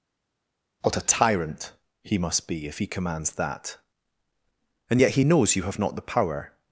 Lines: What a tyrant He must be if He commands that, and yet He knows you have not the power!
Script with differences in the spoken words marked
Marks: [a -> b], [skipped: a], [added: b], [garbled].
What a tyrant He must be if He commands that, and yet He knows you have not the power!